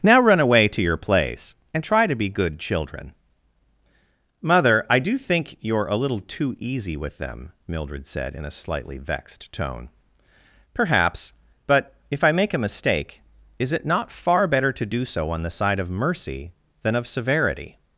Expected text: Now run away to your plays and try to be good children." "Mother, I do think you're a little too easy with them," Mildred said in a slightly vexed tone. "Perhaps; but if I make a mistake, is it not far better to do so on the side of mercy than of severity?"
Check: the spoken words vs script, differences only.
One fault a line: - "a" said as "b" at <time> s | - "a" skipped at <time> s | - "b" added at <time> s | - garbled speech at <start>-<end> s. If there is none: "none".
- "plays" said as "place" at 1.0 s